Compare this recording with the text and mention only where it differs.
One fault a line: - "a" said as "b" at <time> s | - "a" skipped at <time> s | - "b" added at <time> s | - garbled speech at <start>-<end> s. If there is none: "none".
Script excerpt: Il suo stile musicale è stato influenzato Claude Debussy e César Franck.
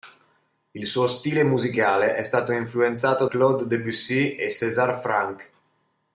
none